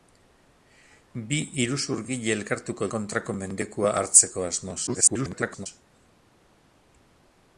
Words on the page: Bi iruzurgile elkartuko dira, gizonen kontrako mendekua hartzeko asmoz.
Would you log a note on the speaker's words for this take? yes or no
yes